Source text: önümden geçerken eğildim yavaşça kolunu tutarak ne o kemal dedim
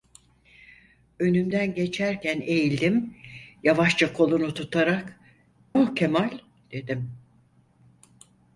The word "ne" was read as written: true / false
false